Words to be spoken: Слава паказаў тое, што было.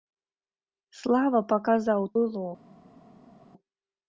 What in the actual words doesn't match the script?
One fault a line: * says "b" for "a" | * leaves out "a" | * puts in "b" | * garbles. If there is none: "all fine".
* leaves out "тое што"